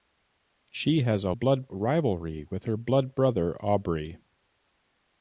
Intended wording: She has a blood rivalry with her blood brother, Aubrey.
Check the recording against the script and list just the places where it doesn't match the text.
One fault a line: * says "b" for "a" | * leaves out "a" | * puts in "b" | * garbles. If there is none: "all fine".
all fine